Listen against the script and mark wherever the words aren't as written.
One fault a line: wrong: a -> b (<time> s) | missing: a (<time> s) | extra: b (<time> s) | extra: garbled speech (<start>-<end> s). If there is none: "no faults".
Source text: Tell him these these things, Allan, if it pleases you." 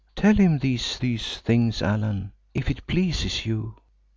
no faults